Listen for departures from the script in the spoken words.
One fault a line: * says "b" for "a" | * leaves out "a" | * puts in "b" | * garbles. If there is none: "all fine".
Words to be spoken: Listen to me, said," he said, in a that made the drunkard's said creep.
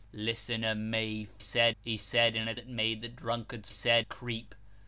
all fine